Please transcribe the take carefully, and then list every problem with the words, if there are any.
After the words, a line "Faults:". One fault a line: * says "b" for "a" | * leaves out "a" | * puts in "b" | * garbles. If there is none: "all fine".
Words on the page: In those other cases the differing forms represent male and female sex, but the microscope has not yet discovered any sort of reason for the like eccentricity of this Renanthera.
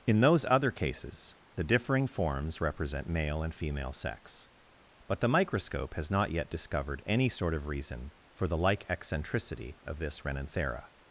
In those other cases the differing forms represent male and female sex, but the microscope has not yet discovered any sort of reason for the like eccentricity of this Renanthera.
Faults:
all fine